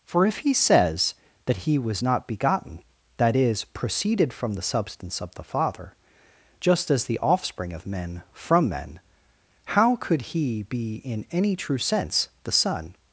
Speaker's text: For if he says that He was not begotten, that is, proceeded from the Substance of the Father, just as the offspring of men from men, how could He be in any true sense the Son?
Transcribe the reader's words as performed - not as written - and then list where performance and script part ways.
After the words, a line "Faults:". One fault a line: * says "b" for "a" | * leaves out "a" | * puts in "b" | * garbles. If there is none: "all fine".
For if he says that He was not begotten, that is, proceeded from the Substance of the Father, just as the offspring of men from men, how could He be in any true sense the Son?
Faults:
all fine